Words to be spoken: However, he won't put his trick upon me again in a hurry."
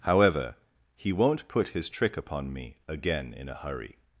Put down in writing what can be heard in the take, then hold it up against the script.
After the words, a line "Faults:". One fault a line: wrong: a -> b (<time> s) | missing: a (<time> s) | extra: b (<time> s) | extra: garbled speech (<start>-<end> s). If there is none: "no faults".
However, he won't put his trick upon me again in a hurry."
Faults:
no faults